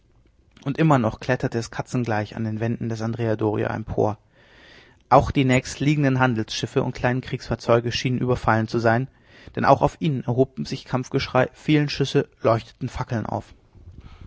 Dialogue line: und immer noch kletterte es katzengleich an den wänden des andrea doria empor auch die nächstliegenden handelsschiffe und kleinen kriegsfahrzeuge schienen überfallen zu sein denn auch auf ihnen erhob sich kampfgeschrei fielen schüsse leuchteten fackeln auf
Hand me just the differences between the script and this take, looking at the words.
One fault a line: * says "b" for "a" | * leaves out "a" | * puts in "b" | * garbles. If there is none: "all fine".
all fine